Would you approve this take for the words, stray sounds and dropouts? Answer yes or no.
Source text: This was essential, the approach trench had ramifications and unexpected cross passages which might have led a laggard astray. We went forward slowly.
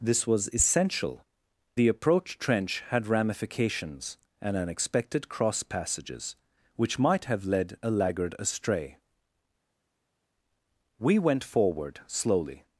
yes